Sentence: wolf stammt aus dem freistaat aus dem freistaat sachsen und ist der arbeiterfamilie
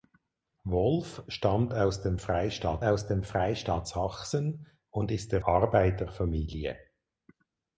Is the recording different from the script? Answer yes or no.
no